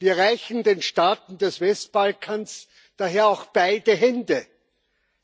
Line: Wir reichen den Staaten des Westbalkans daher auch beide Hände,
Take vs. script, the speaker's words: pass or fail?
pass